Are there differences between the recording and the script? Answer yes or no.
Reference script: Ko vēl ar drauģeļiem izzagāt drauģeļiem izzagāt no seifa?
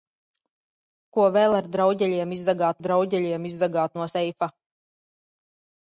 no